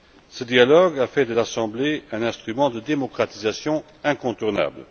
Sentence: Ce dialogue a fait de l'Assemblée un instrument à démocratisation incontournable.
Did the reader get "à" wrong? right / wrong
wrong